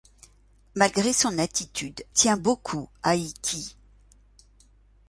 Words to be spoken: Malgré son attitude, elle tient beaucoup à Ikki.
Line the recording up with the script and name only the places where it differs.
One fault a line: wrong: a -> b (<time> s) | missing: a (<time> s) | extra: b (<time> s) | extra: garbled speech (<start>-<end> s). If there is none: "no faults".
missing: elle (2.0 s)